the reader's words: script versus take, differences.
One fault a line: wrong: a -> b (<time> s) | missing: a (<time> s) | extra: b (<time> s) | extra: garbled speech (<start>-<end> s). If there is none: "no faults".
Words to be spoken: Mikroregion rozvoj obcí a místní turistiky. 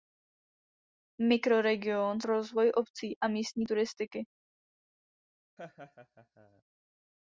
no faults